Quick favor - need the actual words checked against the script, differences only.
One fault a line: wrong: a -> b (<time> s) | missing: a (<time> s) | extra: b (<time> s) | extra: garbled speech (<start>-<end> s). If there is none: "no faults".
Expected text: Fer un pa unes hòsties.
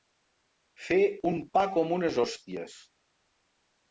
extra: com (1.7 s)